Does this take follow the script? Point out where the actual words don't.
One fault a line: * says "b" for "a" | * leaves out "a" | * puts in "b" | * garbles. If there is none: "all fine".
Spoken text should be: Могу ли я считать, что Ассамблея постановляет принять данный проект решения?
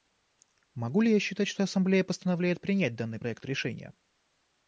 all fine